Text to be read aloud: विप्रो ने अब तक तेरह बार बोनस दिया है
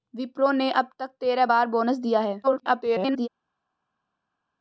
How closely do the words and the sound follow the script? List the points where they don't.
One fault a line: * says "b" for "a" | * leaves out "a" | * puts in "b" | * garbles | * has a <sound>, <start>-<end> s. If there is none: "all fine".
* garbles